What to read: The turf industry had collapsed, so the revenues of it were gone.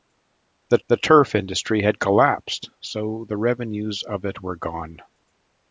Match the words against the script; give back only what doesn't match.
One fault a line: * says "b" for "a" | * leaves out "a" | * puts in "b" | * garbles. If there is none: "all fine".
* puts in "the"